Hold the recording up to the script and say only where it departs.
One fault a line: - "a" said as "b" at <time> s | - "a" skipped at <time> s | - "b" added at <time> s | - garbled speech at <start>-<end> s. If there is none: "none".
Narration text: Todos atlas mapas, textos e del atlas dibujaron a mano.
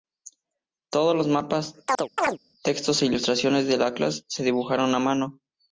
- "atlas" said as "los" at 1.1 s
- "ilustraciones" added at 3.1 s
- "se" added at 4.3 s